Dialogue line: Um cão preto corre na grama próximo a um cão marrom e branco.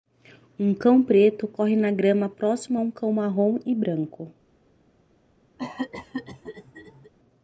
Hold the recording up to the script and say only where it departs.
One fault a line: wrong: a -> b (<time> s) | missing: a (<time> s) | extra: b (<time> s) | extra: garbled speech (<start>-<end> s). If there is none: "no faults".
no faults